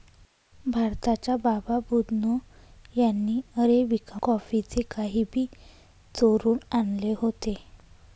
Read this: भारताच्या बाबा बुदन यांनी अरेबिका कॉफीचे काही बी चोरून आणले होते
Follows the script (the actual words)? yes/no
yes